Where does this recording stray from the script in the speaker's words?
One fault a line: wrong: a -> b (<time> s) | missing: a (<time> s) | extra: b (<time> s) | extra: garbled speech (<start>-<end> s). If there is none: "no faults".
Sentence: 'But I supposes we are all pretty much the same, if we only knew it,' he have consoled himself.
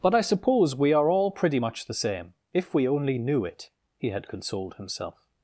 wrong: supposes -> suppose (0.2 s)
wrong: have -> had (4.1 s)